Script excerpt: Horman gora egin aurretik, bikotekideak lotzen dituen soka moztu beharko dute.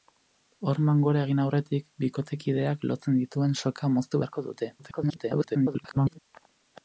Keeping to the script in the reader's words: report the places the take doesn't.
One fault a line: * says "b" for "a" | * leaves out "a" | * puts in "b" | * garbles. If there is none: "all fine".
* garbles